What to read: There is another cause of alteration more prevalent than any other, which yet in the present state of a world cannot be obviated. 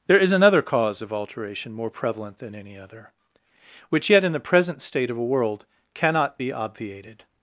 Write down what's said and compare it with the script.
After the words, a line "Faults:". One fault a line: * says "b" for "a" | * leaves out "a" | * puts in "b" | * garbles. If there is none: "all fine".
There is another cause of alteration more prevalent than any other, which yet in the present state of a world cannot be obviated.
Faults:
all fine